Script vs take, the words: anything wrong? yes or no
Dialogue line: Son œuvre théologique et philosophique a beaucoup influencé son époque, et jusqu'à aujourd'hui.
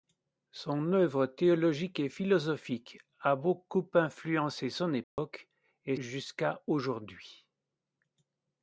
no